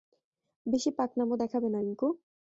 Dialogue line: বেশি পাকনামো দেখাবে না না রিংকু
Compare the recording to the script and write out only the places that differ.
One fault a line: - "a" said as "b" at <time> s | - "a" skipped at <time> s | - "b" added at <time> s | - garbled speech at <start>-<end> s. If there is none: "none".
- "না" skipped at 1.8 s